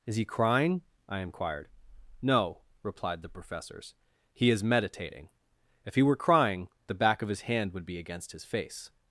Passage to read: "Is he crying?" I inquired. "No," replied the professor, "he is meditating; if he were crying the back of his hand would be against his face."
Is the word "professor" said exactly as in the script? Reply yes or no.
no